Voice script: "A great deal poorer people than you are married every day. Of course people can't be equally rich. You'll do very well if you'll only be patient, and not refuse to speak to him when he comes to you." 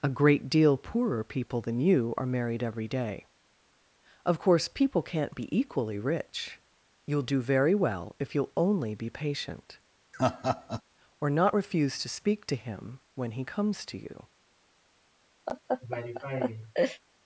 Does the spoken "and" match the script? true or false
false